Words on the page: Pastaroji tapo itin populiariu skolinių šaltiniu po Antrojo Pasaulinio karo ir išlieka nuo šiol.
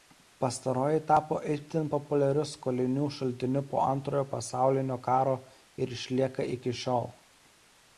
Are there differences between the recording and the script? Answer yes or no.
yes